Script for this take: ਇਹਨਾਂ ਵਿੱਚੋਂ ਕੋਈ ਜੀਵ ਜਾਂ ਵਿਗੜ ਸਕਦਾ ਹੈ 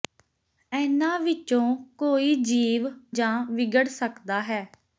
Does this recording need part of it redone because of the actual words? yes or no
no